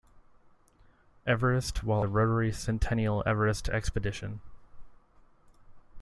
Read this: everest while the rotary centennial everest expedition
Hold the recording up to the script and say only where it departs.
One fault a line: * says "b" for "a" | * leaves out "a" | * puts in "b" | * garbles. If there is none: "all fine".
all fine